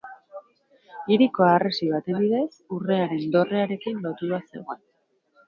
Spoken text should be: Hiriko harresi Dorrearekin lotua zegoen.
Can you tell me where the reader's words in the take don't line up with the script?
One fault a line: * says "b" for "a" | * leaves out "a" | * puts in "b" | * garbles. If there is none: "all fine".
* puts in "baten bidez Urrearen"